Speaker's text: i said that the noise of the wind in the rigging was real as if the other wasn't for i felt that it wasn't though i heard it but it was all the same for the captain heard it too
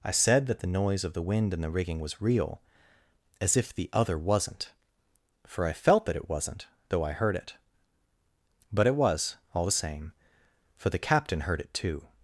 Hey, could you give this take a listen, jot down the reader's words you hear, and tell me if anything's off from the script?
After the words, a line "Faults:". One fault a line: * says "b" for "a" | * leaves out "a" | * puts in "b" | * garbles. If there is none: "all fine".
i said that the noise of the wind in the rigging was real as if the other wasn't for i felt that it wasn't though i heard it but it was all the same for the captain heard it too
Faults:
all fine